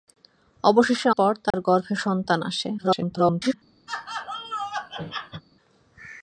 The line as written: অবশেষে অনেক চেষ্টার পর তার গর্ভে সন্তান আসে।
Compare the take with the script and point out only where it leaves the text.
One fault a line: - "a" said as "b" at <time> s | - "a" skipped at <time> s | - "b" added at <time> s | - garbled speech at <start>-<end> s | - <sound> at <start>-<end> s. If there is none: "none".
- "অনেক চেষ্টার" skipped at 1.1 s
- dropout at 1.5-1.5 s
- garbled speech at 2.8-3.5 s
- laugh at 3.9-5.4 s